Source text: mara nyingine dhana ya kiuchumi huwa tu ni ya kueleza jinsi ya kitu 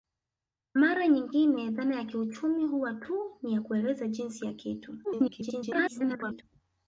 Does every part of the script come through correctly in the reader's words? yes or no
no